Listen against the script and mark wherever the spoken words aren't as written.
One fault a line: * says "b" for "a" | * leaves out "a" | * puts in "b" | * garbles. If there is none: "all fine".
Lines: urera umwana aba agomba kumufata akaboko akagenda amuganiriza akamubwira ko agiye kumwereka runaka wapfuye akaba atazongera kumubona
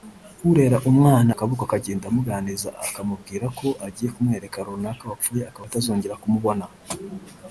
* leaves out "aba agomba kumufata"